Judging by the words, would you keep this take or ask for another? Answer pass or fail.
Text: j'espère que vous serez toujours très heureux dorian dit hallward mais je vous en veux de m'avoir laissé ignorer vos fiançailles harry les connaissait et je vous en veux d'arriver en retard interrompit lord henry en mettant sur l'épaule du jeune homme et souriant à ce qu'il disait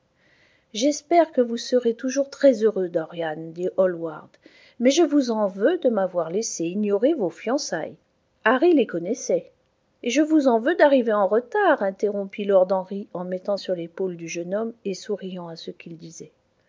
pass